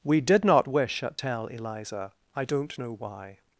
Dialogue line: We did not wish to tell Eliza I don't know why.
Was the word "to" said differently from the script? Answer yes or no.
yes